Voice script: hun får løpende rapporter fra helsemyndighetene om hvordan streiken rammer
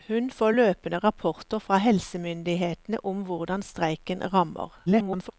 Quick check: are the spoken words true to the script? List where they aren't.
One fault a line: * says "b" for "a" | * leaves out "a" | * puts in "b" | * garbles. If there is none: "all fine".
* garbles